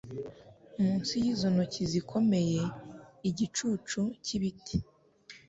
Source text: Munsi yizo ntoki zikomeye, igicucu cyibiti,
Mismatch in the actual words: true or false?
false